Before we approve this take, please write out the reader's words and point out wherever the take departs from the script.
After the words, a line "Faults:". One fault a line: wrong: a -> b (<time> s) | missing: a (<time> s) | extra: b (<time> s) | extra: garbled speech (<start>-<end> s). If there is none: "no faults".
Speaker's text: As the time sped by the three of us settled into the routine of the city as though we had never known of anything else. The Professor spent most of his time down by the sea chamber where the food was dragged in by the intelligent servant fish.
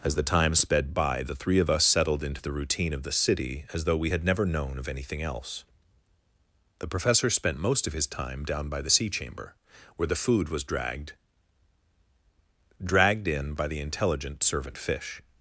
As the time sped by the three of us settled into the routine of the city as though we had never known of anything else. The Professor spent most of his time down by the sea chamber where the food was dragged dragged in by the intelligent servant fish.
Faults:
extra: dragged (12.8 s)